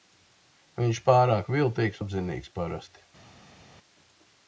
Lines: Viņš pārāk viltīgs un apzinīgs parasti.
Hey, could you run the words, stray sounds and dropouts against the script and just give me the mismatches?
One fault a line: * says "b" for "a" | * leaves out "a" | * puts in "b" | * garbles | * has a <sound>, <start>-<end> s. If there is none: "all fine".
* leaves out "un"